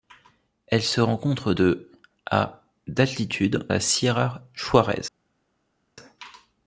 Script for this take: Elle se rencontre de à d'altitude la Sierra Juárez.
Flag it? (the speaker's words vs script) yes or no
no